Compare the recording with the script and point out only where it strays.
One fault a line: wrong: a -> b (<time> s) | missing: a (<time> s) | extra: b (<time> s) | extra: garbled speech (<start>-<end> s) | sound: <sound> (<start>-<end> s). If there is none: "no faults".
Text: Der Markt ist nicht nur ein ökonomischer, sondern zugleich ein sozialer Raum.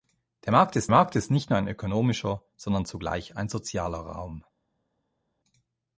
extra: Markt ist (0.9 s)